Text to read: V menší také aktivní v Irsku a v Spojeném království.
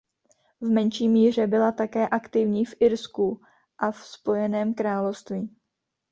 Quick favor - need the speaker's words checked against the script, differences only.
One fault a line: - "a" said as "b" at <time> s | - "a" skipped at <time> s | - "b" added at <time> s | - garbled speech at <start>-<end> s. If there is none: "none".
- "míře byla" added at 1.1 s